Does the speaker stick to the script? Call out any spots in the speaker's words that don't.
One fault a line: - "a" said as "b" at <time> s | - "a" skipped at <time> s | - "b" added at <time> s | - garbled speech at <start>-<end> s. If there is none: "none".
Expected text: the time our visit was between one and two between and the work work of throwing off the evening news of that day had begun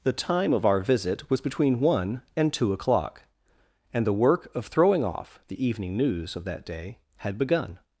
- "of" added at 0.5 s
- "between" said as "o'clock" at 2.7 s
- "work" skipped at 4.5 s